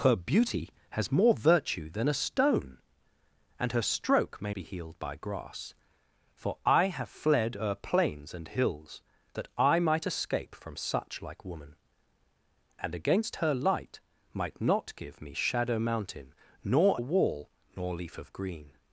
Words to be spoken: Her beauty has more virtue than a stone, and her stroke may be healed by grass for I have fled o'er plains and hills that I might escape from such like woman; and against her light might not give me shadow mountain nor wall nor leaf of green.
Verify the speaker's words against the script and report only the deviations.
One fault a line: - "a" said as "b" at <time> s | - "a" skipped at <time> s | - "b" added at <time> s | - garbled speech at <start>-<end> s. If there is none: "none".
none